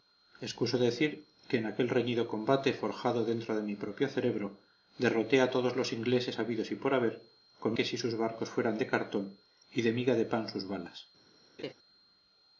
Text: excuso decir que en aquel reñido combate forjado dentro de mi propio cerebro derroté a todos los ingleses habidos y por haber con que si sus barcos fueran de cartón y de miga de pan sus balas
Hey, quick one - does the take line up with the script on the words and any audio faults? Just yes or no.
no